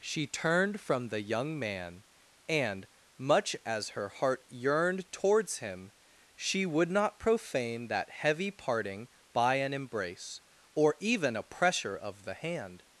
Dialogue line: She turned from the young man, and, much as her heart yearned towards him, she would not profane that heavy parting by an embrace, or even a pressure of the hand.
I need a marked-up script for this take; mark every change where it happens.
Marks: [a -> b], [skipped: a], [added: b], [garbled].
She turned from the young man, and, much as her heart yearned towards him, she would not profane that heavy parting by an embrace, or even a pressure of the hand.